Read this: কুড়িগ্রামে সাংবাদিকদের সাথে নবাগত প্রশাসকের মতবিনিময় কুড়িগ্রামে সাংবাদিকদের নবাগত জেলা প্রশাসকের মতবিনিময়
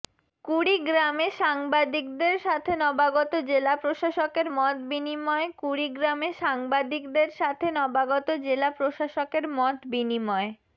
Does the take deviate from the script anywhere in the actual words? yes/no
yes